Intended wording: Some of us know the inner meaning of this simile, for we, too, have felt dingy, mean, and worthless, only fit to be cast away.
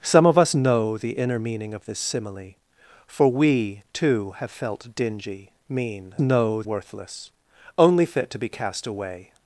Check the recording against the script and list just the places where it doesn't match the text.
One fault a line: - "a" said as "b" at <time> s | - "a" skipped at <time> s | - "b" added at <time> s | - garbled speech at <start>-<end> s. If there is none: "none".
- "and" said as "know" at 6.2 s